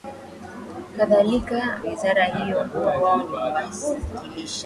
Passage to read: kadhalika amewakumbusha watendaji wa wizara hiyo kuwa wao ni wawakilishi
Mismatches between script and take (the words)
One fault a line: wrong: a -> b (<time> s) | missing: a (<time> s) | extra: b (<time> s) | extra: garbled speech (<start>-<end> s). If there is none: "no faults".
missing: amewakumbusha watendaji wa (1.8 s)